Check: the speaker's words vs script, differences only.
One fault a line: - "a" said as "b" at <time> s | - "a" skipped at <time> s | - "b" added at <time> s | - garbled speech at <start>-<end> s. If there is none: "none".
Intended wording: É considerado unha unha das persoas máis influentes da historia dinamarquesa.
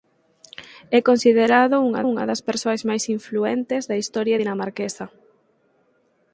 none